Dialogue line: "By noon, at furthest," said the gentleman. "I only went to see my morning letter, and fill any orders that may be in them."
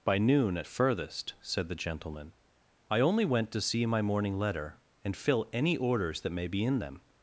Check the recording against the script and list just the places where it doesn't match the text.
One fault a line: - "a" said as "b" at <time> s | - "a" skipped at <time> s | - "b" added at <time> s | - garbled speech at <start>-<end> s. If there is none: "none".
none